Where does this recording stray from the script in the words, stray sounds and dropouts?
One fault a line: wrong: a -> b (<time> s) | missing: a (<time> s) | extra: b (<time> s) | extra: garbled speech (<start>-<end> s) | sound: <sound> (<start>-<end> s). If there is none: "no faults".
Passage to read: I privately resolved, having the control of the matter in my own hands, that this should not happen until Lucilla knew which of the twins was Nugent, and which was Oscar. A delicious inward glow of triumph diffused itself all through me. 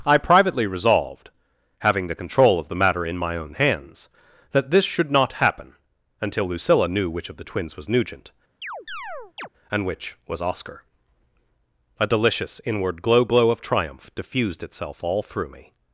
sound: chirp (8.6-9.5 s)
extra: glow (13.2 s)